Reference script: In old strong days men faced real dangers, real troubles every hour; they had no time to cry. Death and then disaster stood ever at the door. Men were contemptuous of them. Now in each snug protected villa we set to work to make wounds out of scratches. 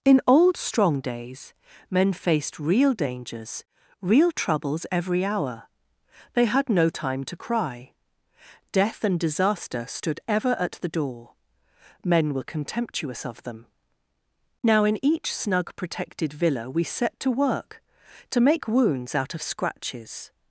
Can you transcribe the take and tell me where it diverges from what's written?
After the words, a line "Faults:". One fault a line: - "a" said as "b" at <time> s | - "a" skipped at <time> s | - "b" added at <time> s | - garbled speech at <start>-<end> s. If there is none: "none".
In old strong days men faced real dangers, real troubles every hour; they had no time to cry. Death and disaster stood ever at the door. Men were contemptuous of them. Now in each snug protected villa we set to work to make wounds out of scratches.
Faults:
- "then" skipped at 9.2 s